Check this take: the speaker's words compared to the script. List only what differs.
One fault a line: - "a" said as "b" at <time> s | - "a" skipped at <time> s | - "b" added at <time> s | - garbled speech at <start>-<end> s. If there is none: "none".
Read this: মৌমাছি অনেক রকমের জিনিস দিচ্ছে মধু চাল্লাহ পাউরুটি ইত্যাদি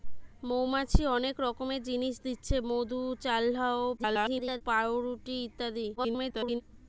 - garbled speech at 4.0-4.6 s
- garbled speech at 6.0-6.6 s